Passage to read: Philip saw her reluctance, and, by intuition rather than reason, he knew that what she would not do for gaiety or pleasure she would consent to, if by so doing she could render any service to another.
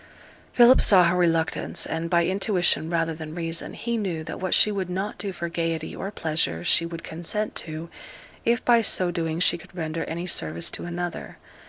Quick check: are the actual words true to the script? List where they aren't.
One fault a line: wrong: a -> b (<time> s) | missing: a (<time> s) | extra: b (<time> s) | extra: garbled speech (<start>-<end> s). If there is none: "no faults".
no faults